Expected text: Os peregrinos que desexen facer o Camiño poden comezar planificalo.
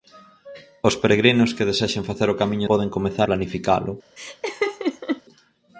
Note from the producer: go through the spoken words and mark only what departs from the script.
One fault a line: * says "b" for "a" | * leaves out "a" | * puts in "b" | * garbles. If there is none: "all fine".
all fine